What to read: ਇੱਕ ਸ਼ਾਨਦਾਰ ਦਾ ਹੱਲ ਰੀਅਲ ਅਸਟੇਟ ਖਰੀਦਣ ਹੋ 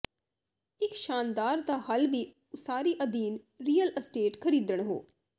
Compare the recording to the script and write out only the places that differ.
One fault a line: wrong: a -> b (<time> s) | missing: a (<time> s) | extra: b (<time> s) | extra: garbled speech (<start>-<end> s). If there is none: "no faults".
extra: ਵੀ ਉਸਾਰੀ ਅਧੀਨ (2.1 s)